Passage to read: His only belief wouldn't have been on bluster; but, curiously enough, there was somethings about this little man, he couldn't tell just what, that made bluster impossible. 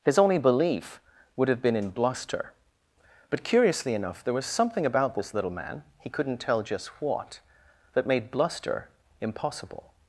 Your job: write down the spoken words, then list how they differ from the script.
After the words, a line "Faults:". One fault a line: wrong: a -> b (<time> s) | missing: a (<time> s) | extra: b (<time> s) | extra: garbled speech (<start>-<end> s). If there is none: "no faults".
His only belief would have been in bluster; but, curiously enough, there was something about this little man, he couldn't tell just what, that made bluster impossible.
Faults:
wrong: wouldn't -> would (1.4 s)
wrong: on -> in (1.8 s)
wrong: somethings -> something (4.5 s)